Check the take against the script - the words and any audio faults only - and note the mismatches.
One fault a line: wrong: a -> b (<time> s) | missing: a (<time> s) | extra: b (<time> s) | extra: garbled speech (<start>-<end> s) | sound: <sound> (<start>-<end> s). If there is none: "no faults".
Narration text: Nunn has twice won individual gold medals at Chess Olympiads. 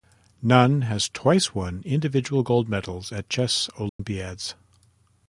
sound: dropout (3.9-4.0 s)